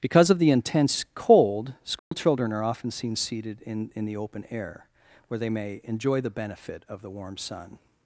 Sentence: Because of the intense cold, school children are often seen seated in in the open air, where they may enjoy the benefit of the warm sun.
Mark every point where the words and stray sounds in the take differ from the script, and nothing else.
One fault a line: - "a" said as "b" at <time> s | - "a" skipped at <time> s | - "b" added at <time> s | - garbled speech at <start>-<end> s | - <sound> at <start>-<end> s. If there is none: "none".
- dropout at 2.0-2.1 s